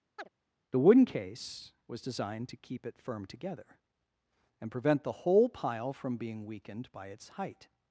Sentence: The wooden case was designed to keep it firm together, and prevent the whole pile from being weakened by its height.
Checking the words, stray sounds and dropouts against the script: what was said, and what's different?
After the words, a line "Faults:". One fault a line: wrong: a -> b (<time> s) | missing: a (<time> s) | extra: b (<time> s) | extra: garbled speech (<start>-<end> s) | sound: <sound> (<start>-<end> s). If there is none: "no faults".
The wooden case was designed to keep it firm together, and prevent the whole pile from being weakened by its height.
Faults:
sound: chirp (0.2-0.3 s)